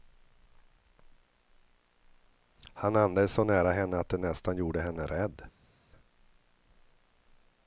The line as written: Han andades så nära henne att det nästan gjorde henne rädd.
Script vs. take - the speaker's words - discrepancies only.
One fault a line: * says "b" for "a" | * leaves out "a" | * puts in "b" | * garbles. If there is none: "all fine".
all fine